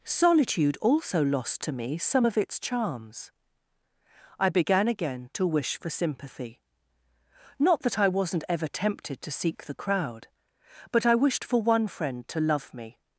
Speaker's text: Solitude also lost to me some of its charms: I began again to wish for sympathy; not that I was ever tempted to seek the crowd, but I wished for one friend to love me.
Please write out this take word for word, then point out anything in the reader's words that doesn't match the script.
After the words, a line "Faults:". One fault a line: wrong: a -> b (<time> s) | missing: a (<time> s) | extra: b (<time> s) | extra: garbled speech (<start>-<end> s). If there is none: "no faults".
Solitude also lost to me some of its charms: I began again to wish for sympathy; not that I wasn't ever tempted to seek the crowd, but I wished for one friend to love me.
Faults:
wrong: was -> wasn't (8.1 s)